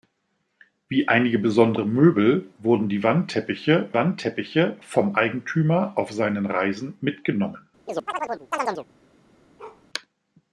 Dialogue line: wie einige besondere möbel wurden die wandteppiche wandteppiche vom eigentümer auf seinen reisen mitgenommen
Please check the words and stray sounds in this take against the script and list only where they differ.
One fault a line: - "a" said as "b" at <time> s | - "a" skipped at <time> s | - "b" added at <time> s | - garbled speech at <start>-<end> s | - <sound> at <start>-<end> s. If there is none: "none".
- chirp at 7.9-8.9 s
- bark at 9.6-9.8 s